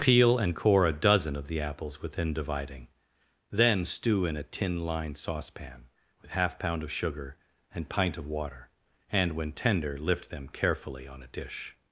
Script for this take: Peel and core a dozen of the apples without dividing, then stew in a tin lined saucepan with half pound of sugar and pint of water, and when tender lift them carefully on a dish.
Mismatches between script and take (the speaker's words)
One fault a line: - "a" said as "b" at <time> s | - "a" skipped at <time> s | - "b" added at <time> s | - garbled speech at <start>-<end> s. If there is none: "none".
- "without" said as "within" at 2.0 s